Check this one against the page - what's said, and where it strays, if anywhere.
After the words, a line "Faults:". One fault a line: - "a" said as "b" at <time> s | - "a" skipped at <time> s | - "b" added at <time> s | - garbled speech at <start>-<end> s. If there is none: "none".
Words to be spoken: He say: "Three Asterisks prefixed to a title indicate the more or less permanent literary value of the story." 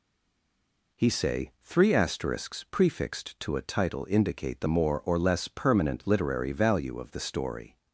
He say: "Three Asterisks prefixed to a title indicate the more or less permanent literary value of the story."
Faults:
none